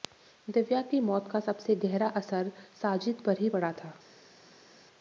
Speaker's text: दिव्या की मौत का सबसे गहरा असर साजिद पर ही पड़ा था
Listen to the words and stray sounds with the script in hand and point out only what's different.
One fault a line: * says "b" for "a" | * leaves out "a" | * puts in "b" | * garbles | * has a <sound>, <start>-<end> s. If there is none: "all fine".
all fine